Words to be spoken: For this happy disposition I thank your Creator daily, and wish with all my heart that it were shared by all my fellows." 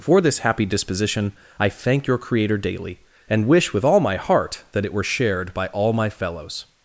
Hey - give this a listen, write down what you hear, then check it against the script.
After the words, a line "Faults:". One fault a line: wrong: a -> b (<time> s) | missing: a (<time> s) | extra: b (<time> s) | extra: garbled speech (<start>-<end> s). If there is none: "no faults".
For this happy disposition I thank your Creator daily, and wish with all my heart that it were shared by all my fellows."
Faults:
no faults